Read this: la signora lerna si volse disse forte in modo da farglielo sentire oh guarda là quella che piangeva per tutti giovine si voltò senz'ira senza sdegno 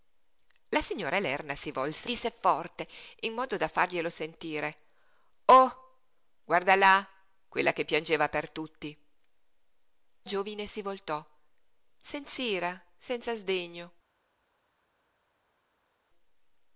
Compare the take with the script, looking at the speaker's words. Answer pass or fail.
pass